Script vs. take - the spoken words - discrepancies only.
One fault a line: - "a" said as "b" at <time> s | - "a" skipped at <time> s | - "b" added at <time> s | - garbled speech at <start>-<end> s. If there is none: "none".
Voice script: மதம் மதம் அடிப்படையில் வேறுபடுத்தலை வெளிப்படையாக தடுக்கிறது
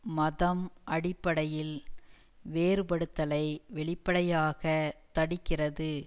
- "மதம்" skipped at 0.6 s